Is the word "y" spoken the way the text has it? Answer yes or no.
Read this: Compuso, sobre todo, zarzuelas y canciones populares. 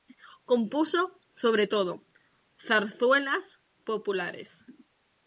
no